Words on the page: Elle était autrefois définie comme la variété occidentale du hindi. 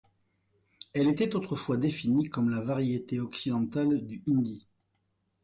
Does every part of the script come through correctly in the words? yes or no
yes